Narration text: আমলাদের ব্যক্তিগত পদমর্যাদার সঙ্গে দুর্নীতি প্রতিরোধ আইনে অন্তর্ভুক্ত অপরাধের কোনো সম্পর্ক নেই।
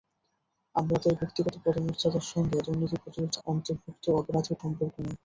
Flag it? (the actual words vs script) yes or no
yes